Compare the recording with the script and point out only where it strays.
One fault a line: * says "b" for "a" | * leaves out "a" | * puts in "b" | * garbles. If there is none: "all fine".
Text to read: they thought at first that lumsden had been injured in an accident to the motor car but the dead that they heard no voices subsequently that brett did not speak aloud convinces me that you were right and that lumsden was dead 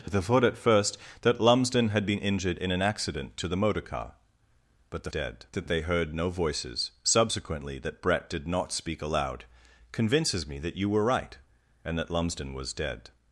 all fine